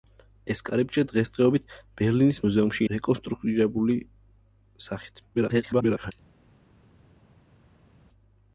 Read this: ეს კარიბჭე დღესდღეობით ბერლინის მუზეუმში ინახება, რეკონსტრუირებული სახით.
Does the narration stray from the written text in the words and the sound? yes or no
yes